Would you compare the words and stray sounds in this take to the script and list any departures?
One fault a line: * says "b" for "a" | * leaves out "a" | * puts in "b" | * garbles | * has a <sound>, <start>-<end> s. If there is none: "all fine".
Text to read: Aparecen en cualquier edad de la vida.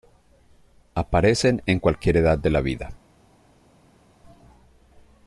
all fine